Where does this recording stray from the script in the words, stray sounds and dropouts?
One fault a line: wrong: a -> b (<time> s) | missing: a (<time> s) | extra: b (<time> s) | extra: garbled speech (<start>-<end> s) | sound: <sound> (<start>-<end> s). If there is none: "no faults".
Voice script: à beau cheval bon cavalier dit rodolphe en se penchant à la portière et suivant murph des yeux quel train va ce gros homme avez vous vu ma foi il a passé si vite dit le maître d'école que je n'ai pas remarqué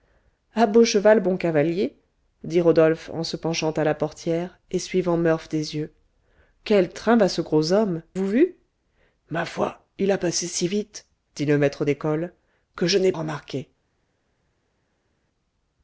missing: avez (8.0 s)
missing: pas (13.1 s)